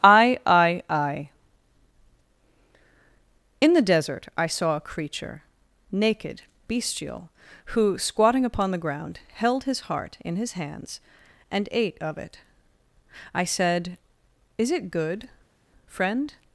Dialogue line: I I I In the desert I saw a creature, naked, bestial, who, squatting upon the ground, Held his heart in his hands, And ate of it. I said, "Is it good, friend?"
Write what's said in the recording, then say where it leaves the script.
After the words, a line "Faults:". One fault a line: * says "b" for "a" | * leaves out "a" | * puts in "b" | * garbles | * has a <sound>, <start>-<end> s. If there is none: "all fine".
I I I In the desert I saw a creature, naked, bestial, who, squatting upon the ground, Held his heart in his hands, And ate of it. I said, "Is it good, friend?"
Faults:
all fine